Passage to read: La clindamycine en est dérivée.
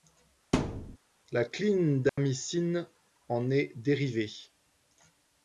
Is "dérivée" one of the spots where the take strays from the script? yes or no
no